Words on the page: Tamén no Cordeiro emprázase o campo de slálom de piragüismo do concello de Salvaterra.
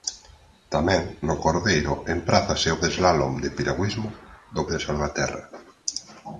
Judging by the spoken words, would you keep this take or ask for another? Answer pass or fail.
fail